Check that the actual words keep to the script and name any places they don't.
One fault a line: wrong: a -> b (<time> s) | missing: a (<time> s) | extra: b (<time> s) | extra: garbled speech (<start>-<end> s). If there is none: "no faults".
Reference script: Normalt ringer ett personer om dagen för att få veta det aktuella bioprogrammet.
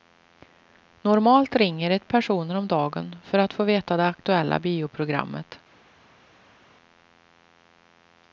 no faults